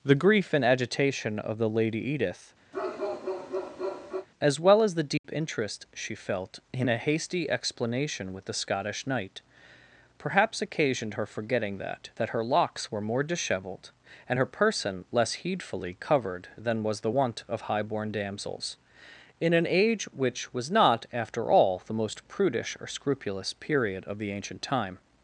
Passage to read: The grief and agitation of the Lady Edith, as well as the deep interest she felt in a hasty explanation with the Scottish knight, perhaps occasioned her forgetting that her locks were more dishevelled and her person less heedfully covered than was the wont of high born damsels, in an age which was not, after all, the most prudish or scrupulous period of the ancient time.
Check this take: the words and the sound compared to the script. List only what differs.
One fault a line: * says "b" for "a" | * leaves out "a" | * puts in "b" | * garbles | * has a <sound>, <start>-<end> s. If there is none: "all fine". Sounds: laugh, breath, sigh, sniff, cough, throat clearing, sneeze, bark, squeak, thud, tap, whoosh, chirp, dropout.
* has a bark, 2.7-4.3 s
* has a dropout, 5.2-5.2 s
* puts in "that"